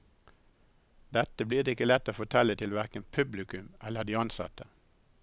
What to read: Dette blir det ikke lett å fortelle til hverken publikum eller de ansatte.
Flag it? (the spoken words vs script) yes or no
no